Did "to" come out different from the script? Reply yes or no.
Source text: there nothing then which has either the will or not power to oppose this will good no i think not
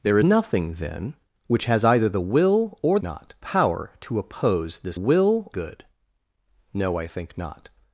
no